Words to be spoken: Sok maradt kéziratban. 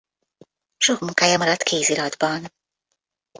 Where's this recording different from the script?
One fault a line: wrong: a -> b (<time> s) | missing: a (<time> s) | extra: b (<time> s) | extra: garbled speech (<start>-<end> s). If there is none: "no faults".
extra: munkája (1.0 s)